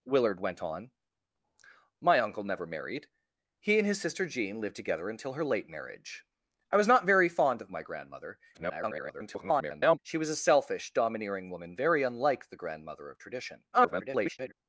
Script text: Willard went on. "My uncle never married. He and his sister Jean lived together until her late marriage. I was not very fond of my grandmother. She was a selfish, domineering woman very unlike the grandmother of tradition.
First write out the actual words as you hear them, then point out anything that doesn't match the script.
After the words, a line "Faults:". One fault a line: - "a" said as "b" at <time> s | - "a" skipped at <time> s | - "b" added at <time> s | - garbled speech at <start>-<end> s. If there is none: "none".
Willard went on. "My uncle never married. He and his sister Jean lived together until her late marriage. I was not very fond of my grandmother. [garbled] She was a selfish, domineering woman very unlike the grandmother of tradition. [garbled]
Faults:
- garbled speech at 8.5-10.0 s
- garbled speech at 13.7-14.5 s